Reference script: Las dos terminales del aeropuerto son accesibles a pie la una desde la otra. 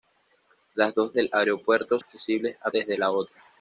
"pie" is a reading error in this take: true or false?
true